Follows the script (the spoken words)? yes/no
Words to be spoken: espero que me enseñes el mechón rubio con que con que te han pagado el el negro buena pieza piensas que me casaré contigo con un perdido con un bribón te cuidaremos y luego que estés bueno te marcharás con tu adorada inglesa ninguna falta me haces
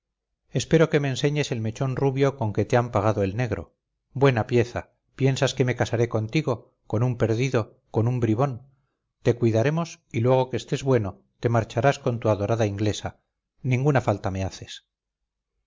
no